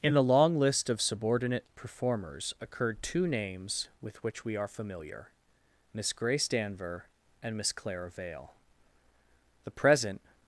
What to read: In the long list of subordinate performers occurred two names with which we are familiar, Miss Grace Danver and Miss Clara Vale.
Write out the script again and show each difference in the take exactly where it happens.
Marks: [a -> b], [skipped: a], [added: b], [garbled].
In the long list of subordinate performers occurred two names with which we are familiar, Miss Grace Danver and Miss Clara Vale. [added: The present]